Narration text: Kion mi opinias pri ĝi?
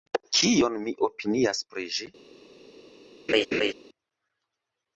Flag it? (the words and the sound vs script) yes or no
yes